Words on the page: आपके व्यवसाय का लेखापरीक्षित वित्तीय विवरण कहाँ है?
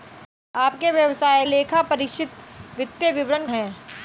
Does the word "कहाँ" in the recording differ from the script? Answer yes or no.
yes